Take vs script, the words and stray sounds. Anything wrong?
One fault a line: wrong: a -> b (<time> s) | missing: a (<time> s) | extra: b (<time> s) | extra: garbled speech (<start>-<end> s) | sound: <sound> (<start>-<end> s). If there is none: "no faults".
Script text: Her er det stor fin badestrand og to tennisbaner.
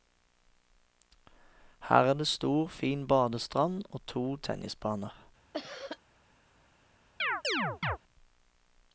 sound: cough (5.5-6.0 s)
sound: chirp (7.2-8.0 s)